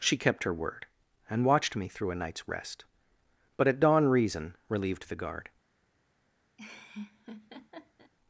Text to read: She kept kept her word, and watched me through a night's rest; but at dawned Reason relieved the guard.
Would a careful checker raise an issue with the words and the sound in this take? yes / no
yes